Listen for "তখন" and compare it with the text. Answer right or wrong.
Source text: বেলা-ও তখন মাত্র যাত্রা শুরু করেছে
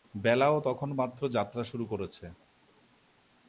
right